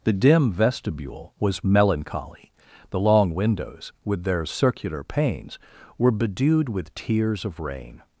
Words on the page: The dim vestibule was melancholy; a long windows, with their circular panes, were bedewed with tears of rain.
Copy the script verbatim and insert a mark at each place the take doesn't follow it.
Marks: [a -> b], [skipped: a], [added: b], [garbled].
The dim vestibule was melancholy; [a -> the] long windows, with their circular panes, were bedewed with tears of rain.